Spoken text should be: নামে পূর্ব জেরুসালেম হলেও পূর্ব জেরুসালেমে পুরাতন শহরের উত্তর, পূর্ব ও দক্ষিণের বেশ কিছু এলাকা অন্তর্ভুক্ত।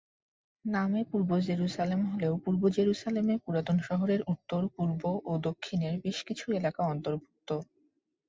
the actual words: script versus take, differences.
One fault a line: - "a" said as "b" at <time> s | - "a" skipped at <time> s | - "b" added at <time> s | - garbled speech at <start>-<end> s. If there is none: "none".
none